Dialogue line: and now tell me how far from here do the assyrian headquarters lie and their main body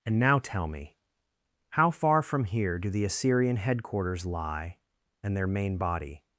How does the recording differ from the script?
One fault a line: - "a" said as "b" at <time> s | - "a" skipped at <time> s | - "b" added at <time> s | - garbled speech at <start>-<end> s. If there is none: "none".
none